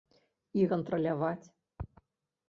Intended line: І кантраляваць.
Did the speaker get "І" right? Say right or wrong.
right